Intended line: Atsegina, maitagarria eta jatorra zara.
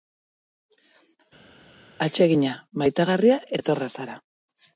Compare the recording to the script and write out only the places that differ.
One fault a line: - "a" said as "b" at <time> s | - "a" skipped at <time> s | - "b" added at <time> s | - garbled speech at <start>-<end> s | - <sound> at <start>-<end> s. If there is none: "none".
- "eta" skipped at 3.4 s